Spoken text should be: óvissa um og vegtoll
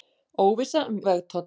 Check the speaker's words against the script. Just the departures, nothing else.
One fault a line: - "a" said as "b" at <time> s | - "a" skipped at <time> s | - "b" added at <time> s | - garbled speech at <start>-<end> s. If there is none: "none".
none